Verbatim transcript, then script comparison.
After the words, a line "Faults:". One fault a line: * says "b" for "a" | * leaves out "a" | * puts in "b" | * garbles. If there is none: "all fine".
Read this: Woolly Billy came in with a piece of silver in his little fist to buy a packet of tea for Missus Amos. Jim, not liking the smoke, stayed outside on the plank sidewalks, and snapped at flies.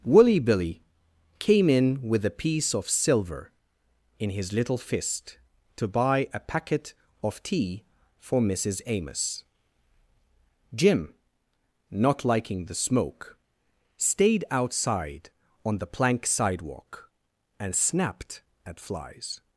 Woolly Billy came in with a piece of silver in his little fist to buy a packet of tea for Missus Amos. Jim, not liking the smoke, stayed outside on the plank sidewalk, and snapped at flies.
Faults:
* says "sidewalk" for "sidewalks"